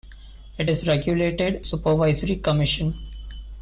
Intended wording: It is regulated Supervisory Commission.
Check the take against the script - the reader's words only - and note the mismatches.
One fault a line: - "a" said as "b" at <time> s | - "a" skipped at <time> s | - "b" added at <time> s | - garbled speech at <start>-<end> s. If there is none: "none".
none